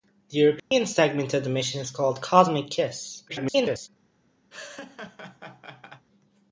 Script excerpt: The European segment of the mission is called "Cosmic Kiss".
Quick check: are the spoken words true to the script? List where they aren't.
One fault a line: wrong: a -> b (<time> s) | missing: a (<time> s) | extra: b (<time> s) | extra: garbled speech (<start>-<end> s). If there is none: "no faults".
extra: garbled speech (3.3-3.9 s)